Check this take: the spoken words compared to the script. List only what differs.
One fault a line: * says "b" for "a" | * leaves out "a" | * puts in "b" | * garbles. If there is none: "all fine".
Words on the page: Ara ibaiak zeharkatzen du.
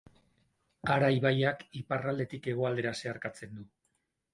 * puts in "iparraldetik hegoaldera"